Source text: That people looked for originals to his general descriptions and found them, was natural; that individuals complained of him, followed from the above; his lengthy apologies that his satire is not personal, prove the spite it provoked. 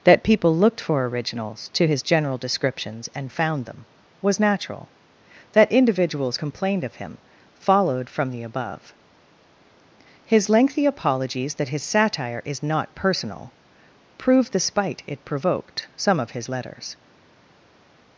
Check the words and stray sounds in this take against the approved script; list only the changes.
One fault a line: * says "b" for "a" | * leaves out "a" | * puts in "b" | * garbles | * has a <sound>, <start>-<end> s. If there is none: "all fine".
* puts in "Some of his letters"